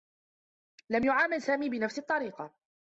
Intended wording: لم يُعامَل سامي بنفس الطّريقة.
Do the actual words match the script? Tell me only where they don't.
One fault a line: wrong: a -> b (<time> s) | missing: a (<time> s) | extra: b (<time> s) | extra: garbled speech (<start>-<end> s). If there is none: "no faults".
no faults